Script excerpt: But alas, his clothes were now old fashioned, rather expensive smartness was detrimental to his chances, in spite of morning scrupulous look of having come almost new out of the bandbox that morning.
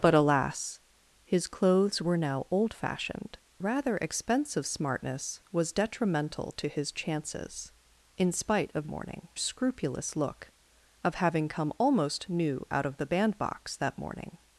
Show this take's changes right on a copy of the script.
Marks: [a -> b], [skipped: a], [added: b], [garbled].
But alas, his clothes were now old fashioned, rather expensive smartness was detrimental to his chances, in spite of morning scrupulous look of having come almost new out of the bandbox that morning.